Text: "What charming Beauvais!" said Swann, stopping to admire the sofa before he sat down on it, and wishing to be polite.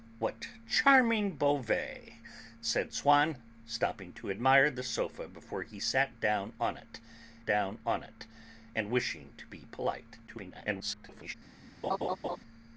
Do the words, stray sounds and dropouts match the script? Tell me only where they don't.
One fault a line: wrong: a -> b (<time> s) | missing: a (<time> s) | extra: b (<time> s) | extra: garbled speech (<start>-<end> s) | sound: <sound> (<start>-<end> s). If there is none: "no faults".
extra: down on it (7.4 s)
extra: garbled speech (10.3-11.3 s)
sound: laugh (11.8-12.4 s)